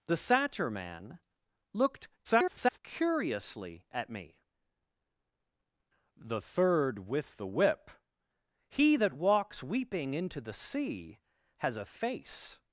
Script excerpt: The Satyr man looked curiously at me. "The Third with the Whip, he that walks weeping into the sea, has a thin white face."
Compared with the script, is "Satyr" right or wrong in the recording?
right